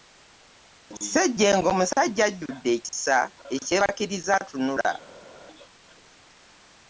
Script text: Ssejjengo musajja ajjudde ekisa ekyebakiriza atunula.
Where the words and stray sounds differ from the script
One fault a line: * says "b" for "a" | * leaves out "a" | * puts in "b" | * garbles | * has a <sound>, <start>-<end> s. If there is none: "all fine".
all fine